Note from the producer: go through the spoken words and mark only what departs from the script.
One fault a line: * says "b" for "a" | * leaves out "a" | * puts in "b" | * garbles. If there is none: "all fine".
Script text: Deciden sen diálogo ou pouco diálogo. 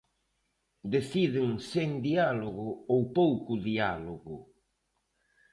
all fine